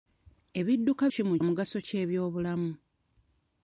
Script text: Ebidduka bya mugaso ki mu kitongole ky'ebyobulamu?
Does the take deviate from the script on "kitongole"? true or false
true